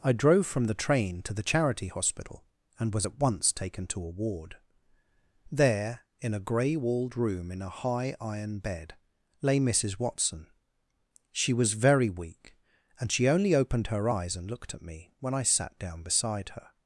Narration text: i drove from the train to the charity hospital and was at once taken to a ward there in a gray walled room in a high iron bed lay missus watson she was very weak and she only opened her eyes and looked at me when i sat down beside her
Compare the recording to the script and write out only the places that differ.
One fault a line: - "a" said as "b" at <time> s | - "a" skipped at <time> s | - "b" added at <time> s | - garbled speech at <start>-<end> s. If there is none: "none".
none